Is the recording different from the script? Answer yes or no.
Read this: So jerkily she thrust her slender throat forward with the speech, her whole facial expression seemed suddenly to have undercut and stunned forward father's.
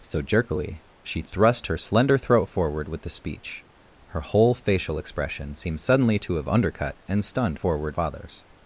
no